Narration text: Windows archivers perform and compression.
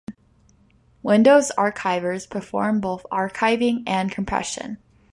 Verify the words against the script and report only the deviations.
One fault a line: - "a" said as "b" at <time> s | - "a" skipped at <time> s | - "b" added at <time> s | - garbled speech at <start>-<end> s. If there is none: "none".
- "both archiving" added at 2.8 s